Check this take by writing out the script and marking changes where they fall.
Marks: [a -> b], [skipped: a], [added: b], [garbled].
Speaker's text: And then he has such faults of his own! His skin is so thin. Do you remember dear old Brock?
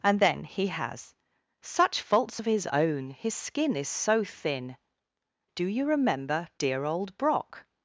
And then he has such faults of his own! His skin is so thin. Do you remember dear old Brock?